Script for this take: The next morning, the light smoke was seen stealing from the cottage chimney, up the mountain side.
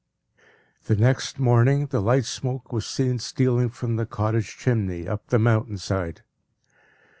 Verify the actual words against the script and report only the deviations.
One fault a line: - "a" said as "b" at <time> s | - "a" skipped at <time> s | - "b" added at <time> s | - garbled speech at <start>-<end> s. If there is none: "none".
none